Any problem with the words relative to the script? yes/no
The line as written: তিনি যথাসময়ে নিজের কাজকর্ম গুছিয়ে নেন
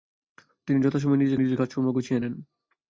yes